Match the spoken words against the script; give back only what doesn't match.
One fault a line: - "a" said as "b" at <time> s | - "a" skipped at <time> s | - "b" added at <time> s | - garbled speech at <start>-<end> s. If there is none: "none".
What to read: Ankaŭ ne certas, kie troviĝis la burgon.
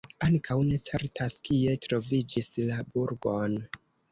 none